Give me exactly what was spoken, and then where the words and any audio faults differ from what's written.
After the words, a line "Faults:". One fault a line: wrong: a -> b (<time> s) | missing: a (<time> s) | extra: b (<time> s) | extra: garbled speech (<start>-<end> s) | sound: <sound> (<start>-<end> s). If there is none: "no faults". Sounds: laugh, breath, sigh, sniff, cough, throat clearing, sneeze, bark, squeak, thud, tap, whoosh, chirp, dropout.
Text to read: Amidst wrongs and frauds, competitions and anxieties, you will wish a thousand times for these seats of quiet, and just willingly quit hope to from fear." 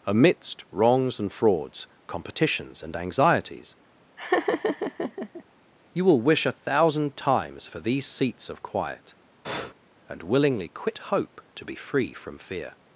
Amidst wrongs and frauds, competitions and anxieties, you will wish a thousand times for these seats of quiet, and willingly quit hope to be free from fear."
Faults:
sound: laugh (4.2-5.4 s)
sound: breath (9.4-9.7 s)
missing: just (10.2 s)
extra: be free (11.6 s)